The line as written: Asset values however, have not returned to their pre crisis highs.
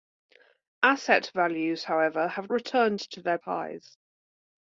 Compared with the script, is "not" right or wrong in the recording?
wrong